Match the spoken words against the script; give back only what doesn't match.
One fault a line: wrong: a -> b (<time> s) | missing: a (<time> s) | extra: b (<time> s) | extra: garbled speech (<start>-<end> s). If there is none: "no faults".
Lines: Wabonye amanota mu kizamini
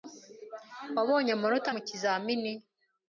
no faults